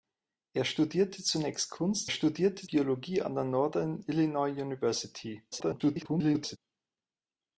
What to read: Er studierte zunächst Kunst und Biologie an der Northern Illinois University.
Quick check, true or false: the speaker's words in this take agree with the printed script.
false